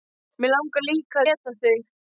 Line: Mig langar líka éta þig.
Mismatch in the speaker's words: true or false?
false